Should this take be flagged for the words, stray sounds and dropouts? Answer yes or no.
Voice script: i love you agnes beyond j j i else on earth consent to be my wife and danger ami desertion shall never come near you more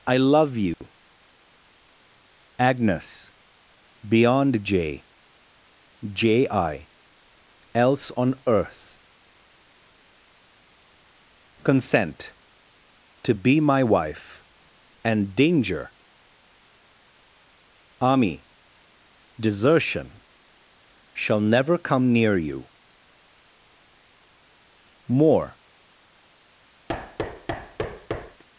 yes